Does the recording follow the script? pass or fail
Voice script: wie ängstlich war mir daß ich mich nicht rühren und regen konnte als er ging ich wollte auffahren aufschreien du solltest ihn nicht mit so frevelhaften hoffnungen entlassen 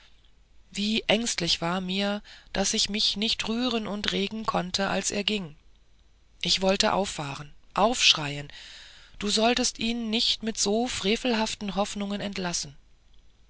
pass